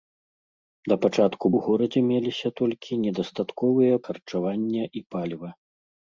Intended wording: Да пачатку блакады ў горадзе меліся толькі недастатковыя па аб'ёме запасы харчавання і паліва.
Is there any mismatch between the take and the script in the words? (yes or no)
yes